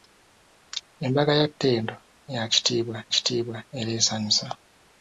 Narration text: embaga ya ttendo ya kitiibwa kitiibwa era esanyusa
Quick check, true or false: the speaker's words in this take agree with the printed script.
true